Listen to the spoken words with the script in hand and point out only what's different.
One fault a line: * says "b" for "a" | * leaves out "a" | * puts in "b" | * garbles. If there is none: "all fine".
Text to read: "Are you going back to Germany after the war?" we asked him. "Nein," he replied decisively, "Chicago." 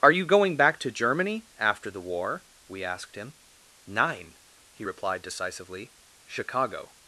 all fine